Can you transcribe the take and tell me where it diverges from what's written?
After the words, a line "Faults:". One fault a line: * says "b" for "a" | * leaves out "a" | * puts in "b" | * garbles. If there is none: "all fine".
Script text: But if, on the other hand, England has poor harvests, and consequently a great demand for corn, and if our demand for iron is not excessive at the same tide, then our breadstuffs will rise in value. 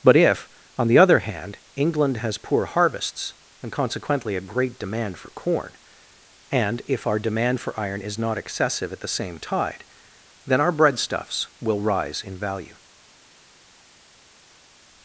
But if, on the other hand, England has poor harvests, and consequently a great demand for corn, and if our demand for iron is not excessive at the same tide, then our breadstuffs will rise in value.
Faults:
all fine